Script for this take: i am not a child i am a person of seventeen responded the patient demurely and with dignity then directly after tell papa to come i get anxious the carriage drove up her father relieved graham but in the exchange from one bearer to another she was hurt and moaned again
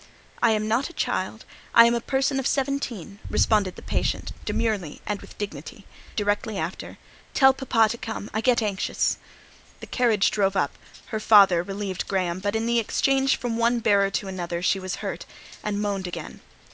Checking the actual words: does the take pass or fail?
fail